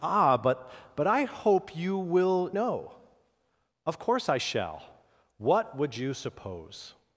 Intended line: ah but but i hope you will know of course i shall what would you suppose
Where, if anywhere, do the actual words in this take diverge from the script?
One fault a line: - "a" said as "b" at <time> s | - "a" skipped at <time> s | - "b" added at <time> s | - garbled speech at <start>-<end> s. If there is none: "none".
none